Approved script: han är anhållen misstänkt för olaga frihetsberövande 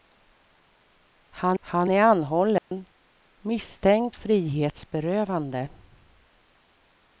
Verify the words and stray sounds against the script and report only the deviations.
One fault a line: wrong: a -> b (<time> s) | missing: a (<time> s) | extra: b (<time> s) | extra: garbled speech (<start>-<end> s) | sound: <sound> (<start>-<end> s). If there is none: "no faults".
extra: han (1.6 s)
sound: dropout (2.6-2.7 s)
missing: för olaga (4.2 s)